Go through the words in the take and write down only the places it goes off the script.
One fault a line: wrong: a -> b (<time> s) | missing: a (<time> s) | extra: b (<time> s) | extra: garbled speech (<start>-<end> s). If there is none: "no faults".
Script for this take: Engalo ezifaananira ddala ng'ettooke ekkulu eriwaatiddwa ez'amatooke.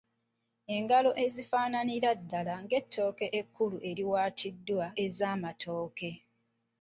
no faults